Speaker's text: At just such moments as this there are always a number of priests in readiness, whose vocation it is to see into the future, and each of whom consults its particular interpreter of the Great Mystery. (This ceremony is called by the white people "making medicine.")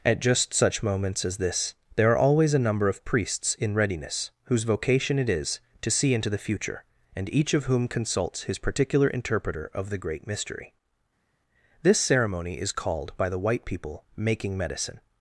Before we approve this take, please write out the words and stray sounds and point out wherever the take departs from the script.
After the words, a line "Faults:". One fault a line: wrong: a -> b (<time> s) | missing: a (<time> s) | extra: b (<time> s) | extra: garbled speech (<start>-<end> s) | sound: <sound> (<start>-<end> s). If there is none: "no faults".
At just such moments as this there are always a number of priests in readiness, whose vocation it is to see into the future, and each of whom consults his particular interpreter of the Great Mystery. (This ceremony is called by the white people "making medicine.")
Faults:
wrong: its -> his (8.4 s)